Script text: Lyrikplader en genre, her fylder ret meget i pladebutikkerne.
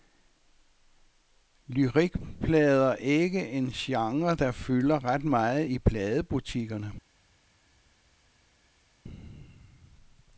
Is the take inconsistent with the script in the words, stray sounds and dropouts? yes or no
yes